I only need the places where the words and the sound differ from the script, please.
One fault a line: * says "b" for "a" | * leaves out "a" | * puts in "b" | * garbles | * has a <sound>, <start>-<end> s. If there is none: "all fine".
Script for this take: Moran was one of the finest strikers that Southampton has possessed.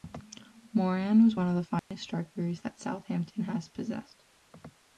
* has a dropout, 1.8-1.9 s